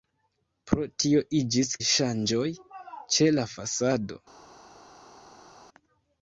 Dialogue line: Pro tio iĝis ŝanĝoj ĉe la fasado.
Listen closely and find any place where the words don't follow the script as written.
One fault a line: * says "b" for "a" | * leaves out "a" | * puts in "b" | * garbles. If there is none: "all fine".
all fine